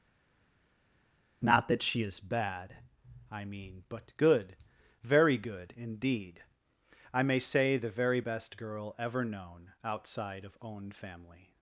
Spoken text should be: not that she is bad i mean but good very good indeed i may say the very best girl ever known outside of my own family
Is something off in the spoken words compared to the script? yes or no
yes